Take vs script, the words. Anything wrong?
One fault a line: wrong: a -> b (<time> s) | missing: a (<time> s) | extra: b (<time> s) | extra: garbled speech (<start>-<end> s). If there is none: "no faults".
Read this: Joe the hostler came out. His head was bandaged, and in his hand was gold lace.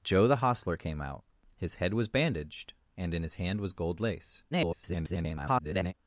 extra: garbled speech (4.5-5.9 s)